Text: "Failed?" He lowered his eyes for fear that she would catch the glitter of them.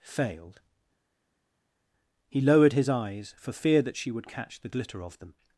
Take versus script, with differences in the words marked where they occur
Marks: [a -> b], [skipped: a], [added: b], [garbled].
"Failed?" He lowered his eyes for fear that she would catch the glitter of them.